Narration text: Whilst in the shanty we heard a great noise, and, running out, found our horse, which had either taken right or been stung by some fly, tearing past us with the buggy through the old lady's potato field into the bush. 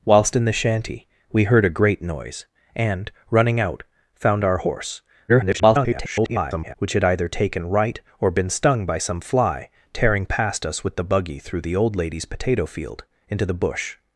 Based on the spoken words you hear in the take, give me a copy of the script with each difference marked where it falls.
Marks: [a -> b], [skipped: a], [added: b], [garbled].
Whilst in the shanty we heard a great noise, and, running out, found our horse, [garbled] which had either taken right or been stung by some fly, tearing past us with the buggy through the old lady's potato field into the bush.